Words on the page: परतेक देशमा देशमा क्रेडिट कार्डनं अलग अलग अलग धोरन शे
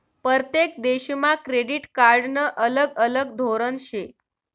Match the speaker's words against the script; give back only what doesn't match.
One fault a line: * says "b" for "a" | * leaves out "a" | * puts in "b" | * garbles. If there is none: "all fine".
* leaves out "देशमा"
* leaves out "अलग"